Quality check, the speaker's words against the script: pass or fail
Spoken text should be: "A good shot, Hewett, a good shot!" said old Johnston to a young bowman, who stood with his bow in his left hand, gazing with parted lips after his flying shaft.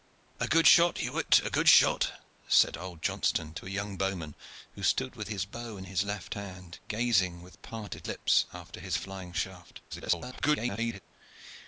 fail